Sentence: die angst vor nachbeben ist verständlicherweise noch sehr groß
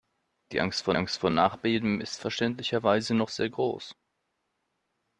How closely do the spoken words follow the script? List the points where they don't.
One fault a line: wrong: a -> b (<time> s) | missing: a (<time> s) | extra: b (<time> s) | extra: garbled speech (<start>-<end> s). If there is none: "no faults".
extra: angst vor (0.9 s)